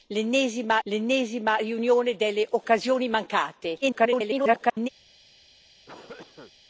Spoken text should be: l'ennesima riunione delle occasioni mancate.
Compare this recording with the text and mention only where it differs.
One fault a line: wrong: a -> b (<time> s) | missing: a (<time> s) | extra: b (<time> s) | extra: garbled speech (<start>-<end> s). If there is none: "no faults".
extra: l'ennesima (0.8 s)
extra: garbled speech (3.8-4.9 s)